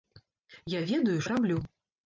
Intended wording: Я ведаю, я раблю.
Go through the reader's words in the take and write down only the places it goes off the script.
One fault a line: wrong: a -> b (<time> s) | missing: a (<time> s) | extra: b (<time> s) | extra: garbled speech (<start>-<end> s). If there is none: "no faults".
no faults